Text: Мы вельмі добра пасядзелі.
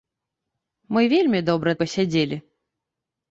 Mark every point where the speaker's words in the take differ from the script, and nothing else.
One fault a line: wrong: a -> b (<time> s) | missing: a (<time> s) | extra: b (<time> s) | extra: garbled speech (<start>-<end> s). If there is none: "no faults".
no faults